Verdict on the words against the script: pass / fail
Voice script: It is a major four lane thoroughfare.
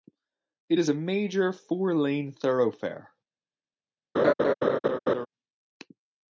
pass